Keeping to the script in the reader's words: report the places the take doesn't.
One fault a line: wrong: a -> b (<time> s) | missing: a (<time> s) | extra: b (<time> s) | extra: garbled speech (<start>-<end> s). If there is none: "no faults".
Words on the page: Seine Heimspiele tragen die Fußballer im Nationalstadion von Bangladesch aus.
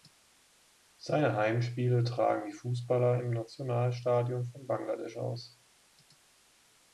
no faults